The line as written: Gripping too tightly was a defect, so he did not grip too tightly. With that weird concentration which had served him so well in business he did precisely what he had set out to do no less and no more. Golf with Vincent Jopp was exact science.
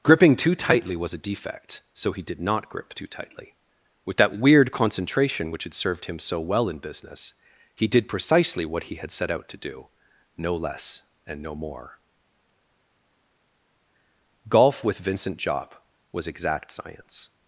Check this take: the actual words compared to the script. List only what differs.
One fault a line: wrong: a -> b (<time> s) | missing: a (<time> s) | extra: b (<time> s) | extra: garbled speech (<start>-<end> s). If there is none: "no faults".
no faults